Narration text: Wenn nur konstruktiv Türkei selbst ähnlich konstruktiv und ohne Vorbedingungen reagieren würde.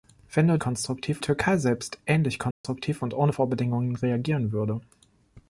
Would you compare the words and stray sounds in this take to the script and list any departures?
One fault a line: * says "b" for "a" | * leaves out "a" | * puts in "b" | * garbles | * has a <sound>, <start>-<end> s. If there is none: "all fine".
* has a dropout, 2.5-2.6 s